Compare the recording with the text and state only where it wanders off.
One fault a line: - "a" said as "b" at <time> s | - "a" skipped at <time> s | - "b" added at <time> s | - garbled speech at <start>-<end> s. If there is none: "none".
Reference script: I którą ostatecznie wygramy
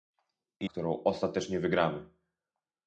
none